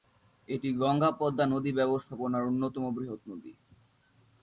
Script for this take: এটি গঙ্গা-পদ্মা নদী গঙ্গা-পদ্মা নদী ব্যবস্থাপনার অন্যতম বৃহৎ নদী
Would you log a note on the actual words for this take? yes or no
yes